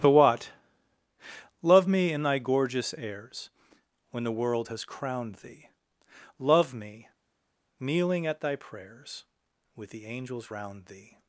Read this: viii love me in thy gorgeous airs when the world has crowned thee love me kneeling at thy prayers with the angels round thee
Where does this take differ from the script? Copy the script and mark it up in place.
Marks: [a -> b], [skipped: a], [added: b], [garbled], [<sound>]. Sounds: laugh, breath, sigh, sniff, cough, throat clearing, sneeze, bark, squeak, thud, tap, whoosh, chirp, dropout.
[viii -> the what] love me in thy gorgeous airs when the world has crowned thee love me kneeling at thy prayers with the angels round thee